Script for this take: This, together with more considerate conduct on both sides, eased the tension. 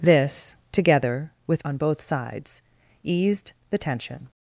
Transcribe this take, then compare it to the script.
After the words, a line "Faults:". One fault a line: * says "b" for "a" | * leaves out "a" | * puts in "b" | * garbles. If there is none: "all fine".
This, together with on both sides, eased the tension.
Faults:
* leaves out "more considerate conduct"